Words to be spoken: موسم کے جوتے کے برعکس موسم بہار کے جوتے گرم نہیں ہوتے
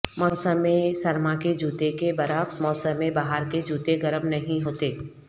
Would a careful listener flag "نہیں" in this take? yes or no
no